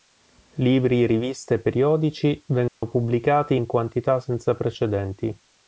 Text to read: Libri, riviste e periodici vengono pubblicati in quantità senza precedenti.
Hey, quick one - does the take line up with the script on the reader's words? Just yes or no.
yes